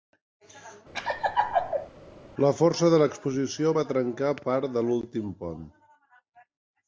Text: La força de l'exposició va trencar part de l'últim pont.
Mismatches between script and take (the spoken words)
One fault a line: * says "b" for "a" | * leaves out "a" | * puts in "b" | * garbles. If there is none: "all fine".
all fine